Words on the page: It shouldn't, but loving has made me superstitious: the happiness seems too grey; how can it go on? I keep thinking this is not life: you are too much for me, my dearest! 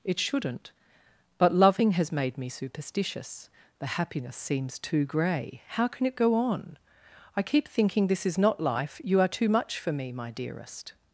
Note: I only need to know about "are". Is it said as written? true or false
true